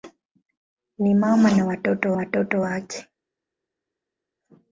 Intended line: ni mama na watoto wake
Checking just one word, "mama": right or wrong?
right